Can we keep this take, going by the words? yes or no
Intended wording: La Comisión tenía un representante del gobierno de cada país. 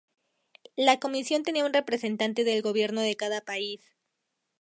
yes